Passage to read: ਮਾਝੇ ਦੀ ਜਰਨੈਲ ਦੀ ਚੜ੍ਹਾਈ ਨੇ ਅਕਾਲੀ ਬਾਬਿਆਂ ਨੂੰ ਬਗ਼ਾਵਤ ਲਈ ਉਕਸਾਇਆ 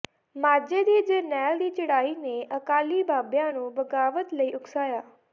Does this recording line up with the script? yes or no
yes